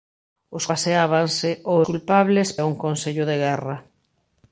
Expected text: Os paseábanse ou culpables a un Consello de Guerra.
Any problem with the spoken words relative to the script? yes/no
no